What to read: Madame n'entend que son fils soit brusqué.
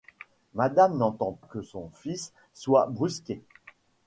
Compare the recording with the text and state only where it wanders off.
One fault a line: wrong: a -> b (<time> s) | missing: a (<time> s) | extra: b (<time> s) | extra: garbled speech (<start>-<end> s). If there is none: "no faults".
no faults